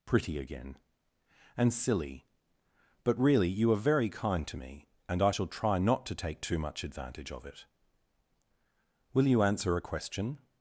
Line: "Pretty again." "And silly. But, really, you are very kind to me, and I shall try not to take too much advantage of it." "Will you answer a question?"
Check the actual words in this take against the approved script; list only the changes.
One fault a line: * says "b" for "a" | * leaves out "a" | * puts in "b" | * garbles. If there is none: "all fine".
all fine